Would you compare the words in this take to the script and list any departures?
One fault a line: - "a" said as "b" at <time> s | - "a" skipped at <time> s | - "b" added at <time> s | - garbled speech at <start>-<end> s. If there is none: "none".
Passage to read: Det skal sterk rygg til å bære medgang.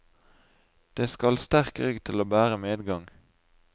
none